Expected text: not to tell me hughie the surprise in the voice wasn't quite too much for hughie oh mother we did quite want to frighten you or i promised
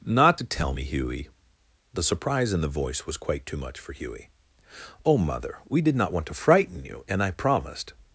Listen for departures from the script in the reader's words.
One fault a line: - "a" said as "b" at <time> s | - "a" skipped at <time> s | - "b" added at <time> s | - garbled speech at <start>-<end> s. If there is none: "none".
- "wasn't" said as "was" at 3.1 s
- "quite" said as "not" at 6.0 s
- "or" said as "and" at 7.1 s